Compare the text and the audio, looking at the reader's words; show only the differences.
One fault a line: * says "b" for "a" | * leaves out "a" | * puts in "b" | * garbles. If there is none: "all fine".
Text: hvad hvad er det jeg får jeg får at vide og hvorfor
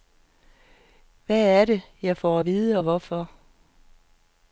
* leaves out "hvad"
* leaves out "jeg får"